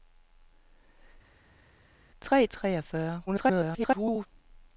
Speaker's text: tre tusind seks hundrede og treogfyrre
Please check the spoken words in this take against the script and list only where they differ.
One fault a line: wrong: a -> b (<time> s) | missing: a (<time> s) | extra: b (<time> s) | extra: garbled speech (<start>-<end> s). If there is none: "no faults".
missing: tusind seks hundrede (2.5 s)
extra: garbled speech (3.3-4.3 s)